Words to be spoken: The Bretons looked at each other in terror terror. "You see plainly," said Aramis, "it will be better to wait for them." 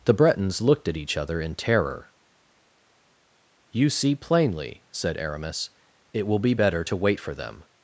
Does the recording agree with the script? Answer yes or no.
no